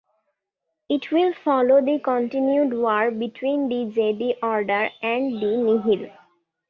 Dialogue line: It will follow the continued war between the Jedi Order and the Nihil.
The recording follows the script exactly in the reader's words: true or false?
true